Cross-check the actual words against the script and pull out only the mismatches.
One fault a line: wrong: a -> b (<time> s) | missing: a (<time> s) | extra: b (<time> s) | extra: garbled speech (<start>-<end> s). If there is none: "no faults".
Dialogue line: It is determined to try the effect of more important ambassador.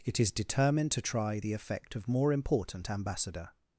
no faults